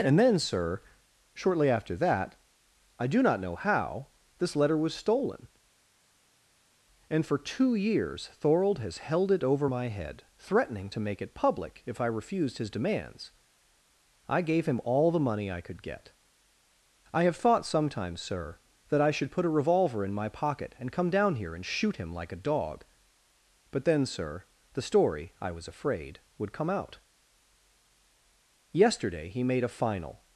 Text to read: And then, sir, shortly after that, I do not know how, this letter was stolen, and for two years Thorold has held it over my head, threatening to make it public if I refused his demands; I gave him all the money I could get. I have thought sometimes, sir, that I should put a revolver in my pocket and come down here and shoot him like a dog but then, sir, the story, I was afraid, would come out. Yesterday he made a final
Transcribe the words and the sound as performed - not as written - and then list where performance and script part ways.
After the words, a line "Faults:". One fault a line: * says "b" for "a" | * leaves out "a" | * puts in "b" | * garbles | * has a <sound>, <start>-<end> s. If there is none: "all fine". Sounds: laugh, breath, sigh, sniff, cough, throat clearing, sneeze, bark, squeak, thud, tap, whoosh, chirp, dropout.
And then, sir, shortly after that, I do not know how, this letter was stolen, and for two years Thorold has held it over my head, threatening to make it public if I refused his demands; I gave him all the money I could get. I have thought sometimes, sir, that I should put a revolver in my pocket and come down here and shoot him like a dog but then, sir, the story, I was afraid, would come out. Yesterday he made a final
Faults:
all fine